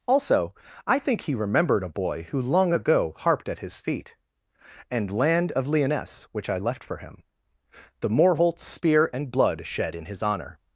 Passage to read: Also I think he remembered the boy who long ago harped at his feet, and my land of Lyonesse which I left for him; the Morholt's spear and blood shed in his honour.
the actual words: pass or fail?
fail